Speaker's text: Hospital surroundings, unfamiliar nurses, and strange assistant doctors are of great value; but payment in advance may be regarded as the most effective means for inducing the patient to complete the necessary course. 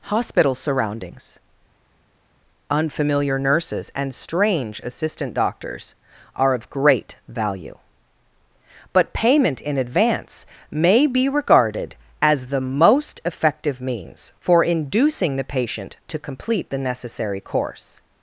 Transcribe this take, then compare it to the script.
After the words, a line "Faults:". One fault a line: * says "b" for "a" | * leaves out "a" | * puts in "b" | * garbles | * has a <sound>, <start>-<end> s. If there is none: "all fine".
Hospital surroundings, unfamiliar nurses, and strange assistant doctors are of great value; but payment in advance may be regarded as the most effective means for inducing the patient to complete the necessary course.
Faults:
all fine